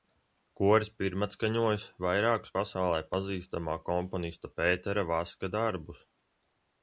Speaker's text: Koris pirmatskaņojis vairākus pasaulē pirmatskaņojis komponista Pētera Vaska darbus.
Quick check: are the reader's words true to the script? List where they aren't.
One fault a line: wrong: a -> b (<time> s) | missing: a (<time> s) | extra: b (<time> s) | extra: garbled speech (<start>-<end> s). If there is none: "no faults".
wrong: pirmatskaņojis -> pazīstamā (3.2 s)